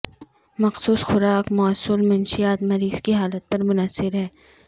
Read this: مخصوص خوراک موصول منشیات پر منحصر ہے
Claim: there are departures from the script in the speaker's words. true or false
true